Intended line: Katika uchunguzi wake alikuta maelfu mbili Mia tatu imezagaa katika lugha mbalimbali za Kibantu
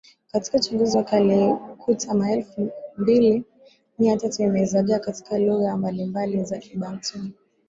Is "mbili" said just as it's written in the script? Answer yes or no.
yes